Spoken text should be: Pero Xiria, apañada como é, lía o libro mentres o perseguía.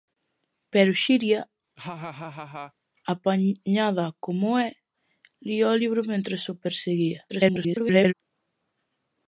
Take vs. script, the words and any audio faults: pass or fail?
fail